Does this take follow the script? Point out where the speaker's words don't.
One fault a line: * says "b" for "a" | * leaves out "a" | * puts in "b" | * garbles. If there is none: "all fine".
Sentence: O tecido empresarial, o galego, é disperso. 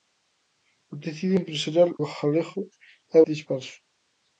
all fine